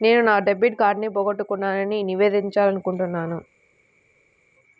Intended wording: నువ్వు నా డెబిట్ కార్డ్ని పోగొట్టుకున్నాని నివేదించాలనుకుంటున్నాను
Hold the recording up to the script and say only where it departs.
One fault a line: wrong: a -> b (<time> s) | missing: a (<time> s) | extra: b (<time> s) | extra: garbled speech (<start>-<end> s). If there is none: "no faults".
wrong: నువ్వు -> నేను (0.0 s)